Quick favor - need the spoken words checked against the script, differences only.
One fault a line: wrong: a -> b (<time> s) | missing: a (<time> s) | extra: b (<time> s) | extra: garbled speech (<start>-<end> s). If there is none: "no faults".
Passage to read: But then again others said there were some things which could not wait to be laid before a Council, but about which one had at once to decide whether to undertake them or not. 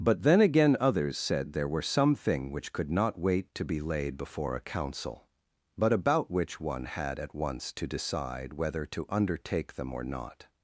wrong: things -> thing (2.1 s)